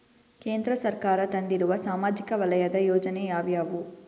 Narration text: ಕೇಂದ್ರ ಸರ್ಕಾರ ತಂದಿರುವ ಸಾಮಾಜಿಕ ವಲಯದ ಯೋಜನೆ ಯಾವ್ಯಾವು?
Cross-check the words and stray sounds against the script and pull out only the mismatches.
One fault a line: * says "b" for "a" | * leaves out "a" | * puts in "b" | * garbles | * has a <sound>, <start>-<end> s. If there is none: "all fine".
all fine